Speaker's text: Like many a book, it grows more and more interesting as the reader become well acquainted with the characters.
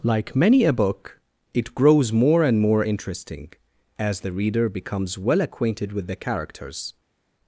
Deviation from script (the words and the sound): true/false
true